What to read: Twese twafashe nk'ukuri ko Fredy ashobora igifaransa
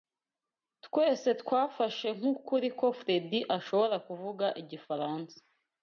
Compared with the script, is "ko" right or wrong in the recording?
right